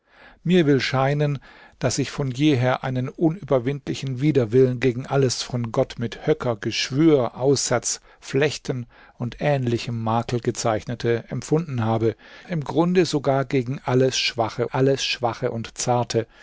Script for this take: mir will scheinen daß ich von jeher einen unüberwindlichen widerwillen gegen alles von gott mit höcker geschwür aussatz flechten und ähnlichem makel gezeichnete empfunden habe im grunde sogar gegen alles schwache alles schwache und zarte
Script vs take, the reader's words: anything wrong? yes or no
no